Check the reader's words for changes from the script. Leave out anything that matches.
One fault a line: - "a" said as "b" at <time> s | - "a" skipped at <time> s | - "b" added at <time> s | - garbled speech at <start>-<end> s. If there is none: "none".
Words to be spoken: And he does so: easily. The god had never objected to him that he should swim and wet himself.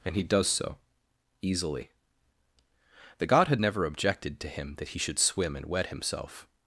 none